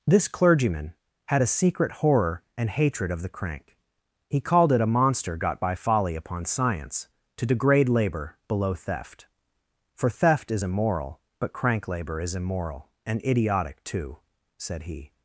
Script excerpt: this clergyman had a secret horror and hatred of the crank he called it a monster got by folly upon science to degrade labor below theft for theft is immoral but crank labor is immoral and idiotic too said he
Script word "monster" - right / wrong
right